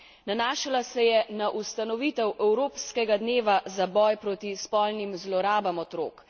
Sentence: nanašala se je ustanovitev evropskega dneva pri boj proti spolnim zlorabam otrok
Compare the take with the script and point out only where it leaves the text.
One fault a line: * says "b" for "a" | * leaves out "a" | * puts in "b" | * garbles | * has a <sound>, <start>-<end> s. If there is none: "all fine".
* puts in "na"
* says "za" for "pri"